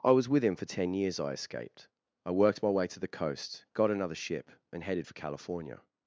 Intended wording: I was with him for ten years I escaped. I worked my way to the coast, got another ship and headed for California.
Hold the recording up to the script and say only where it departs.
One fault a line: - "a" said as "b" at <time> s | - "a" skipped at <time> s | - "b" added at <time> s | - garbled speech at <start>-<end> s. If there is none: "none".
none